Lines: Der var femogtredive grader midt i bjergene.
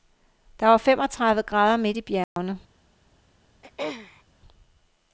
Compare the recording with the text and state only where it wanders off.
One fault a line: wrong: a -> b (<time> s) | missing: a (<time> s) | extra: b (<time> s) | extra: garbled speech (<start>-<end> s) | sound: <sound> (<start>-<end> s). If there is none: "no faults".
sound: dropout (2.2-2.4 s)
sound: throat clearing (3.6-4.2 s)